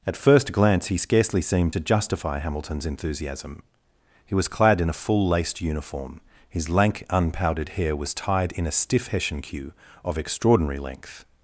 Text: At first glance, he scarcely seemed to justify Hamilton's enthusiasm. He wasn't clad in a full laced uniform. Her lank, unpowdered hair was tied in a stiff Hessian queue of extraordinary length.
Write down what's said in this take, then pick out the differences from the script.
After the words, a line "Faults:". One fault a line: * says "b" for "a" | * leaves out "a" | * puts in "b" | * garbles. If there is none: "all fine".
At first glance, he scarcely seemed to justify Hamilton's enthusiasm. He was clad in a full laced uniform. His lank, unpowdered hair was tied in a stiff Hessian queue of extraordinary length.
Faults:
* says "was" for "wasn't"
* says "His" for "Her"